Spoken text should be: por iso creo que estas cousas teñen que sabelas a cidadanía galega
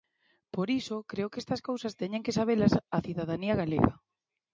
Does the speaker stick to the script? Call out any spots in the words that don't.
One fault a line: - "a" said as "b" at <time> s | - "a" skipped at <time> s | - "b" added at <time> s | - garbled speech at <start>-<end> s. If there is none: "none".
none